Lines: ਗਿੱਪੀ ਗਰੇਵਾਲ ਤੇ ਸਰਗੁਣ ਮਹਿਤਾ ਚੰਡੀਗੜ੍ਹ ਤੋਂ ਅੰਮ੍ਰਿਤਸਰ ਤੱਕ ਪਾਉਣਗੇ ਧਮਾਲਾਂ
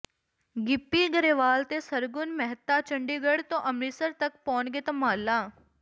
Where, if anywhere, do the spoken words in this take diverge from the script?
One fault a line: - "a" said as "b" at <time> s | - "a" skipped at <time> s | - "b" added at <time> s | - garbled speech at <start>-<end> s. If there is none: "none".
none